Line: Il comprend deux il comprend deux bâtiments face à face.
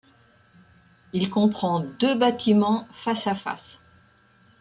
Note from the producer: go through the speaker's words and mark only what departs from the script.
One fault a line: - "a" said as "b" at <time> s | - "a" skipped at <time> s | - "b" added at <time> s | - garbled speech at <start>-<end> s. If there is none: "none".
- "il comprend deux" skipped at 2.2 s